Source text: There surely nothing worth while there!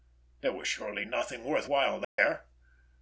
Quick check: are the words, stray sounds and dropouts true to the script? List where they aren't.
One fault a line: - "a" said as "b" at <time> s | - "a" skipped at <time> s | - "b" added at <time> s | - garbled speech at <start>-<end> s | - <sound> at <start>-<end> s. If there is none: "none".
- "was" added at 0.5 s
- dropout at 2.0-2.2 s